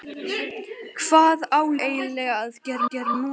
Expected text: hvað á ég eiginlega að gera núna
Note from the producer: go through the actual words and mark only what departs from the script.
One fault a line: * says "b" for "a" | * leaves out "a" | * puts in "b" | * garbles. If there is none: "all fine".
* leaves out "ég"
* puts in "gera"